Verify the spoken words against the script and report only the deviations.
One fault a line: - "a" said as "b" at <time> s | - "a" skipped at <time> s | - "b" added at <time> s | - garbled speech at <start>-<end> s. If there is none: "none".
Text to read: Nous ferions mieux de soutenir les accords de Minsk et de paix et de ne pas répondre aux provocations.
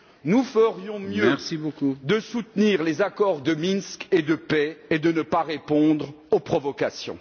none